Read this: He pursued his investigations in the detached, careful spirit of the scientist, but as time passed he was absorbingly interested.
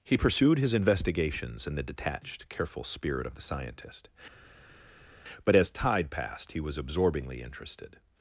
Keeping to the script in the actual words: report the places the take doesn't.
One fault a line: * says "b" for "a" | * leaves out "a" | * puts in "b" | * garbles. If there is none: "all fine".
* says "tide" for "time"